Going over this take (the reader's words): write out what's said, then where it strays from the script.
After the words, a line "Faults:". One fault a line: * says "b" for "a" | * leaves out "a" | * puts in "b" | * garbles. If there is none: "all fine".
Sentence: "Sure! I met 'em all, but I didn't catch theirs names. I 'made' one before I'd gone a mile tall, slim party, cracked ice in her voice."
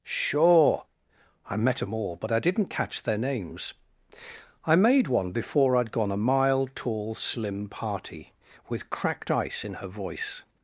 "Sure! I met 'em all, but I didn't catch their names. I 'made' one before I'd gone a mile tall, slim party, with cracked ice in her voice."
Faults:
* says "their" for "theirs"
* puts in "with"